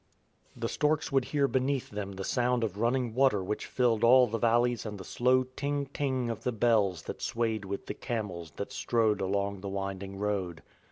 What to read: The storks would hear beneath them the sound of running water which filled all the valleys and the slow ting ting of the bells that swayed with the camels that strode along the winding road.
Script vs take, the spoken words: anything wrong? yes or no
no